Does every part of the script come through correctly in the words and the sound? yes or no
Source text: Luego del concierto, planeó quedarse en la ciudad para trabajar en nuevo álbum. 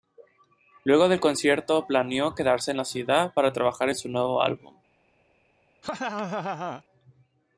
no